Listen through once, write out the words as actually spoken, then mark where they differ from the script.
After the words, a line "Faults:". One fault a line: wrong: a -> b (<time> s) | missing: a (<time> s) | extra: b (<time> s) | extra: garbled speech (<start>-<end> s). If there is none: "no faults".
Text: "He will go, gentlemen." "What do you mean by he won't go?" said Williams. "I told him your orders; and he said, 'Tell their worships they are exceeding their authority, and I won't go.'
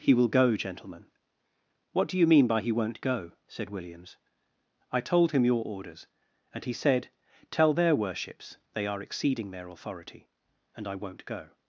"He will go, gentlemen." "What do you mean by he won't go?" said Williams. "I told him your orders; and he said, 'Tell their worships they are exceeding their authority, and I won't go.'
Faults:
no faults